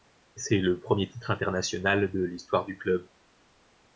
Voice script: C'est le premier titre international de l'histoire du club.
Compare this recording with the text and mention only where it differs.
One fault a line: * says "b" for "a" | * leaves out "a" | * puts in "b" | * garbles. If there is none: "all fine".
all fine